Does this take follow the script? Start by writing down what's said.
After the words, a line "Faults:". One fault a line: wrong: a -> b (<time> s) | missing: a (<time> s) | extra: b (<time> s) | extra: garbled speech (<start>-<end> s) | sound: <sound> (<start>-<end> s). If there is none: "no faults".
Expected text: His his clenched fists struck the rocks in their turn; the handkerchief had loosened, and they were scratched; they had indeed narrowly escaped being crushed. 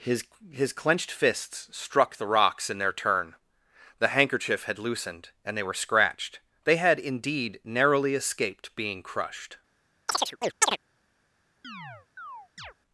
His his clenched fists struck the rocks in their turn; the handkerchief had loosened, and they were scratched; they had indeed narrowly escaped being crushed.
Faults:
sound: chirp (10.1-10.8 s)
sound: chirp (11.6-12.7 s)